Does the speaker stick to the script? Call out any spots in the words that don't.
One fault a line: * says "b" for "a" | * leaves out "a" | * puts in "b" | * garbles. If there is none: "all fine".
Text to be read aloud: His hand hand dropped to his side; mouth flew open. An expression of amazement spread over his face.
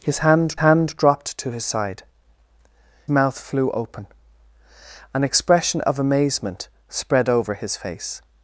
all fine